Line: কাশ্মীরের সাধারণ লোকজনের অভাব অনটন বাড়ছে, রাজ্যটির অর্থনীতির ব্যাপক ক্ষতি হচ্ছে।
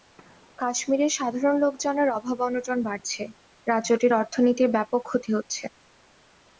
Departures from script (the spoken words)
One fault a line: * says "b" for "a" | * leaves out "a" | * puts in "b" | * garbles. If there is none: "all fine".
all fine